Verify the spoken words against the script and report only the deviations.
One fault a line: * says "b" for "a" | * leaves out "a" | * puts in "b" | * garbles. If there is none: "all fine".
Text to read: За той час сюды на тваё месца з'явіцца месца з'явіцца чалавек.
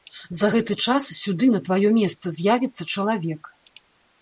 * says "гэты" for "той"
* leaves out "месца з'явіцца"